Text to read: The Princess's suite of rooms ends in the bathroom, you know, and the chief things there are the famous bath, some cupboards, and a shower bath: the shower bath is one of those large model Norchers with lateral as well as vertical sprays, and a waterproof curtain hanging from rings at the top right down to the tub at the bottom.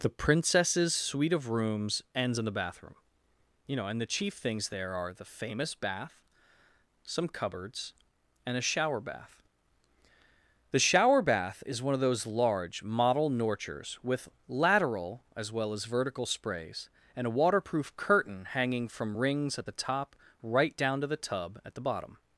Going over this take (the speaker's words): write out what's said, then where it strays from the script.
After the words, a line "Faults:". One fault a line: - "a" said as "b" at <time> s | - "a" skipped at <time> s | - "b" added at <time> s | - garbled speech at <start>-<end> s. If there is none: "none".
The Princess's suite of rooms ends in the bathroom, you know, and the chief things there are the famous bath, some cupboards, and a shower bath: the shower bath is one of those large model Norchers with lateral as well as vertical sprays, and a waterproof curtain hanging from rings at the top right down to the tub at the bottom.
Faults:
none